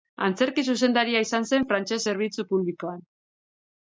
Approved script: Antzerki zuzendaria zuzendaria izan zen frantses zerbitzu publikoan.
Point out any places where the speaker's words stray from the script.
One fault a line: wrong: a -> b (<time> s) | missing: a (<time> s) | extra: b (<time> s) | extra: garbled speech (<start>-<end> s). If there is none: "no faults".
missing: zuzendaria (1.2 s)